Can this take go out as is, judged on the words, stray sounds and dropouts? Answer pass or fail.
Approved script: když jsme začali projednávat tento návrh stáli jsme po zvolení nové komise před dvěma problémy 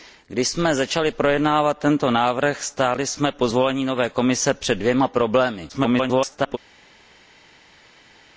fail